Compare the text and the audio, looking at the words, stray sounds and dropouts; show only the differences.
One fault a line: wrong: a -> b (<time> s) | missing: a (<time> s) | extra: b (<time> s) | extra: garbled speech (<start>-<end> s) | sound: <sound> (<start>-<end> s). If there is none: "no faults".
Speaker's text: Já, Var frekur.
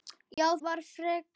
sound: dropout (0.3-0.4 s)